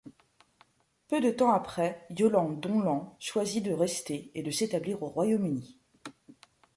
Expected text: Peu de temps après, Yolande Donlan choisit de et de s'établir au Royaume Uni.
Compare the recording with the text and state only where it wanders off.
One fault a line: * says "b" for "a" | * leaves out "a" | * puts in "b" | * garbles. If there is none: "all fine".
* puts in "rester"